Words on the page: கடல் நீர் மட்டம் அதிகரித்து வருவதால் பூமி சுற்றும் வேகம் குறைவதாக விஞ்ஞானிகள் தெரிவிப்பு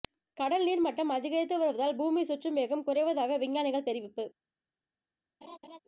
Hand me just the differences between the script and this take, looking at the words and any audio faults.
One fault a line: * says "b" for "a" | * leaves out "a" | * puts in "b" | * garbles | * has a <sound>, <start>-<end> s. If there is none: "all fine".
* has a laugh, 5.4-5.8 s